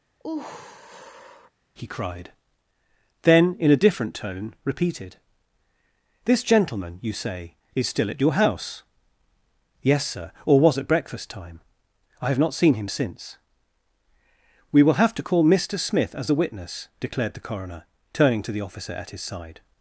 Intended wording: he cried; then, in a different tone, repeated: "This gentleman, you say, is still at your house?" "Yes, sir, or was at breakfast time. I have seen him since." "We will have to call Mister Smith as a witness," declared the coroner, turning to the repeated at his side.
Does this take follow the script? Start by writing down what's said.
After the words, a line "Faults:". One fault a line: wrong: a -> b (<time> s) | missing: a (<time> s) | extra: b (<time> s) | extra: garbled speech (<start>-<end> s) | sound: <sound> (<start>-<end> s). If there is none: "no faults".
he cried; then, in a different tone, repeated: "This gentleman, you say, is still at your house?" "Yes, sir, or was at breakfast time. I have not seen him since." "We will have to call Mister Smith as a witness," declared the coroner, turning to the officer at his side.
Faults:
sound: sigh (0.2-1.5 s)
extra: not (12.4 s)
wrong: repeated -> officer (18.6 s)